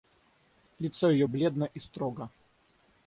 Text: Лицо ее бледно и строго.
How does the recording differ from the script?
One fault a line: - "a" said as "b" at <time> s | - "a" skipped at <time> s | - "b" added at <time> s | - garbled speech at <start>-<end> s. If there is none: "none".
none